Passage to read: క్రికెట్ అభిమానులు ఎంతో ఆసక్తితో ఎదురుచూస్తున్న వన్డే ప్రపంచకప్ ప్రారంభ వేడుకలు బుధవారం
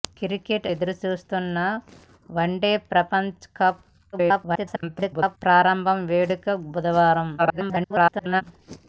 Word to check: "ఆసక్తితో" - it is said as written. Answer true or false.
false